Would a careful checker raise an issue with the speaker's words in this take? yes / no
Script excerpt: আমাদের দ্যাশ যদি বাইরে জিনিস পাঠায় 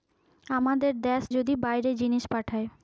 no